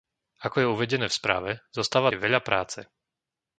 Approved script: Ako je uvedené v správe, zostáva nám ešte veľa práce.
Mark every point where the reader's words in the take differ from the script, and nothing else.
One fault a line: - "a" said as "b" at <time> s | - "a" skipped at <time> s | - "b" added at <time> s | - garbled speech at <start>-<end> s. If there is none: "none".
- "nám ešte" skipped at 2.1 s